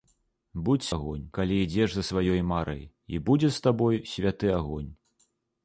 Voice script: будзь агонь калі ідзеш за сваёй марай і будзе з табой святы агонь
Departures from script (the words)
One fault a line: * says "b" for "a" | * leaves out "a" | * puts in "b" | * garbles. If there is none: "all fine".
all fine